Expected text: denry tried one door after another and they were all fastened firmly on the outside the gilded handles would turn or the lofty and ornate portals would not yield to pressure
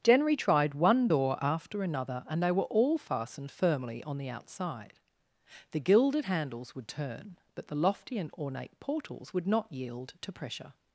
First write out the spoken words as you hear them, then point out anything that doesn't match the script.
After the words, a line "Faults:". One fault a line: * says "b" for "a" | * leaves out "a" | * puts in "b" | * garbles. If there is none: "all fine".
denry tried one door after another and they were all fastened firmly on the outside the gilded handles would turn but the lofty and ornate portals would not yield to pressure
Faults:
* says "but" for "or"